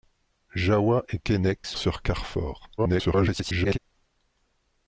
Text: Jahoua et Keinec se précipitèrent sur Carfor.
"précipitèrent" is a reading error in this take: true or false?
true